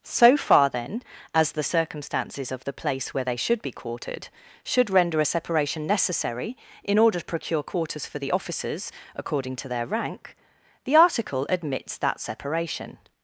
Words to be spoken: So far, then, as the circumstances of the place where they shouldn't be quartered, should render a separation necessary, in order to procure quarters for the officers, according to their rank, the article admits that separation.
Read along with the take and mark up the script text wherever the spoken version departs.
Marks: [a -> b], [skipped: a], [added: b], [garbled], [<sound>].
So far, then, as the circumstances of the place where they [shouldn't -> should] be quartered, should render a separation necessary, in order to procure quarters for the officers, according to their rank, the article admits that separation.